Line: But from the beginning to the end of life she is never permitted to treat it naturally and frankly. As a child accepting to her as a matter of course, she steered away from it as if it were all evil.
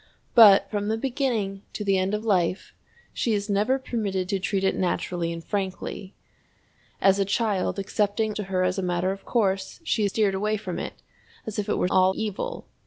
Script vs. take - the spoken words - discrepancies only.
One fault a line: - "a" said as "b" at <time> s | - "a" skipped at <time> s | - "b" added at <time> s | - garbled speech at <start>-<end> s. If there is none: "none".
none